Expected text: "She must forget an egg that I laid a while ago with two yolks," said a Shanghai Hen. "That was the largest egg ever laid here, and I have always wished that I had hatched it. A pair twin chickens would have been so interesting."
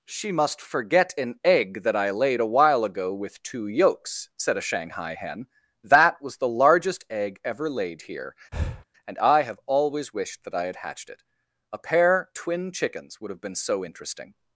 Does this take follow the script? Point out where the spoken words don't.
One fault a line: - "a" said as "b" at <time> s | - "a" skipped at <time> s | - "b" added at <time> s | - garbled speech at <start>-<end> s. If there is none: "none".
none